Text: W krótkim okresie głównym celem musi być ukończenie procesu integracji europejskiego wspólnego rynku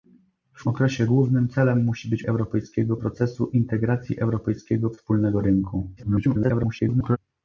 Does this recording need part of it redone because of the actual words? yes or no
yes